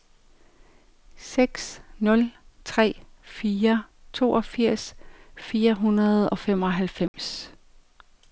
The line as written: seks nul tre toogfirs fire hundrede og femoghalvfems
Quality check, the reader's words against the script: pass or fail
fail